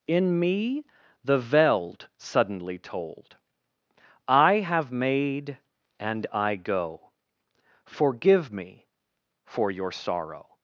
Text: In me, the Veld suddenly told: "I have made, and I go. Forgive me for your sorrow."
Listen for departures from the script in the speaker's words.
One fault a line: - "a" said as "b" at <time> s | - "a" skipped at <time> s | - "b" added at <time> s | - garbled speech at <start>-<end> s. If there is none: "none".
none